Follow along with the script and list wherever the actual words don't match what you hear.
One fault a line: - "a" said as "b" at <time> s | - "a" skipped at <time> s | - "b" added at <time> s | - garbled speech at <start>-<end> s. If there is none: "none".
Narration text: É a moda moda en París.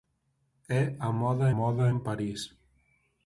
none